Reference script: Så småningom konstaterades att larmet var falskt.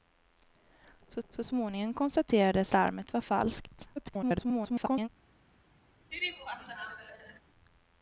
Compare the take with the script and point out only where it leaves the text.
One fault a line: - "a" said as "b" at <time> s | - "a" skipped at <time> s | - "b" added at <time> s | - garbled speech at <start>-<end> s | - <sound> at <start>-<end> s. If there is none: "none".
- "så" added at 1.3 s
- "att" skipped at 2.7 s
- garbled speech at 4.0-5.1 s
- laugh at 6.1-7.4 s